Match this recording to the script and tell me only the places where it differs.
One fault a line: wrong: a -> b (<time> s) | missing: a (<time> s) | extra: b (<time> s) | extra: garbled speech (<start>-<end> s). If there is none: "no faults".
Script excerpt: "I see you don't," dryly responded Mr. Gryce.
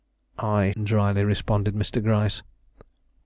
missing: see you don't (0.7 s)